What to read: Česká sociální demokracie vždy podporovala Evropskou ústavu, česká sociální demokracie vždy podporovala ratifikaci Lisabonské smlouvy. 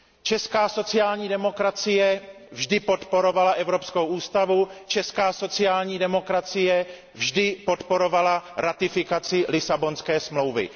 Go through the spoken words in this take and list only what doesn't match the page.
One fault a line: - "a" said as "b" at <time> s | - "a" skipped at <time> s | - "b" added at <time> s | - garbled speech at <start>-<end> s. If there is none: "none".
none